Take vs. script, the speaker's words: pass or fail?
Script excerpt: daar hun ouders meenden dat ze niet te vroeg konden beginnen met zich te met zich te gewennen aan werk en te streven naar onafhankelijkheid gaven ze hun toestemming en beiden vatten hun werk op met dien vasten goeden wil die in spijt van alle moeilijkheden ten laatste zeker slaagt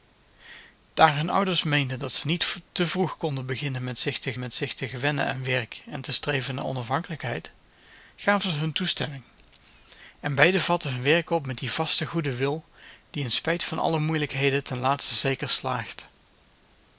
pass